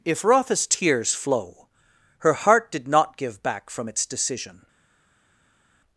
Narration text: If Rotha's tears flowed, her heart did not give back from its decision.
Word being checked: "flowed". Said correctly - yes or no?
no